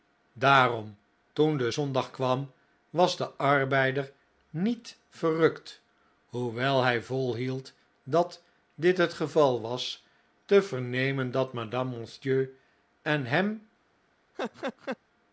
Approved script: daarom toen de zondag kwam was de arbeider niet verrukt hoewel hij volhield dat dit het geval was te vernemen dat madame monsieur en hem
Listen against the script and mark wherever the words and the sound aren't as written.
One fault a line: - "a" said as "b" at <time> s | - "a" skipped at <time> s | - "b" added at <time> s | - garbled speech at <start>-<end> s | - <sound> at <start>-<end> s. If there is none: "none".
- laugh at 14.3-15.0 s